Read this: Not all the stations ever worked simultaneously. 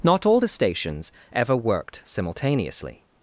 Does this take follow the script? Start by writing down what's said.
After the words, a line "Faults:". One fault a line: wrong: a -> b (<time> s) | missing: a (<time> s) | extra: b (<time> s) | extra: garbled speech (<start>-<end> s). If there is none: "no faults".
Not all the stations ever worked simultaneously.
Faults:
no faults